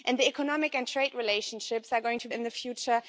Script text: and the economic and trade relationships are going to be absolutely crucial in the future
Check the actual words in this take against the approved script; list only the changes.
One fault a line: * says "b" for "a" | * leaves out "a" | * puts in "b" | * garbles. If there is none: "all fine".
* leaves out "be absolutely crucial"